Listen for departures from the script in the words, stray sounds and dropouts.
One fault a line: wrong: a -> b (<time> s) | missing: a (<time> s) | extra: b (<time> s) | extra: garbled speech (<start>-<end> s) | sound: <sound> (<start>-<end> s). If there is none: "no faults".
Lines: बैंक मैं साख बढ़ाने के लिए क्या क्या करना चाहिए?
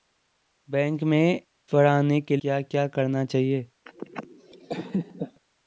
missing: साख (1.4 s)
missing: लिए (2.4 s)
sound: laugh (3.9-5.4 s)